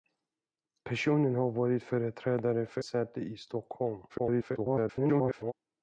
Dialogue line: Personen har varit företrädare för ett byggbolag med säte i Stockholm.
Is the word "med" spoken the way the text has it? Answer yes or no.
no